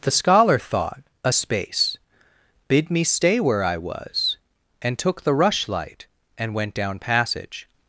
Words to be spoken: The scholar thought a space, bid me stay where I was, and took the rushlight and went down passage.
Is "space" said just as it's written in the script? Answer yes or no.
yes